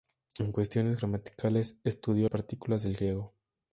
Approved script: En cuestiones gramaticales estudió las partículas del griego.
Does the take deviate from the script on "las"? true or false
true